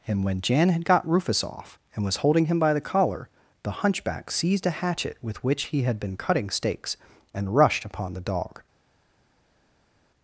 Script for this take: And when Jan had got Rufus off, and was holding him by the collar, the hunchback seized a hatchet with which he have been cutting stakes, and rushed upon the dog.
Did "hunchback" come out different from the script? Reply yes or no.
no